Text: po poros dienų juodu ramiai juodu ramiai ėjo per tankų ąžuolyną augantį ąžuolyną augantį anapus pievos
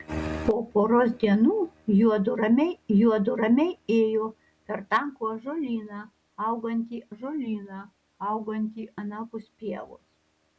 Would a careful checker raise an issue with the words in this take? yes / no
no